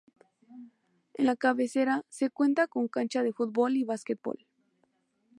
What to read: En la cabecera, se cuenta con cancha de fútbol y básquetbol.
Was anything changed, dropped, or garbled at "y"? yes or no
no